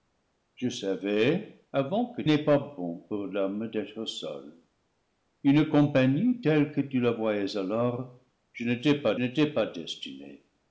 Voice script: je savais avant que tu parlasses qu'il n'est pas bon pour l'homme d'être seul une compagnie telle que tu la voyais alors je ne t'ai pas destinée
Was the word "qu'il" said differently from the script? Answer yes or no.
yes